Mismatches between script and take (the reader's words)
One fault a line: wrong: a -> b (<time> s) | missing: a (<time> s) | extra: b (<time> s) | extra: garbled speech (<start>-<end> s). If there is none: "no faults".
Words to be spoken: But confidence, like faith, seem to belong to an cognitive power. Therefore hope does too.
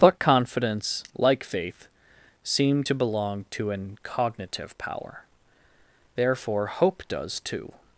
no faults